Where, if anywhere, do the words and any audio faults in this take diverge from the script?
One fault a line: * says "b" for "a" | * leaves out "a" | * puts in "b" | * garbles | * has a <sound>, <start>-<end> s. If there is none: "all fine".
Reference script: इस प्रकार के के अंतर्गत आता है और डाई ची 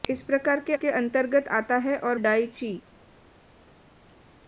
all fine